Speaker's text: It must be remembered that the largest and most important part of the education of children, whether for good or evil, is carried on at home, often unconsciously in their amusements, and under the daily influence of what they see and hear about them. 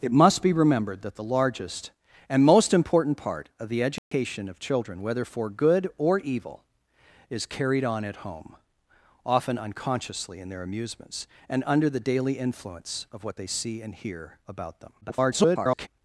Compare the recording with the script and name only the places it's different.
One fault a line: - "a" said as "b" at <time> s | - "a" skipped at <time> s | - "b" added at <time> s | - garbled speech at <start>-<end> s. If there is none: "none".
- garbled speech at 15.0-15.9 s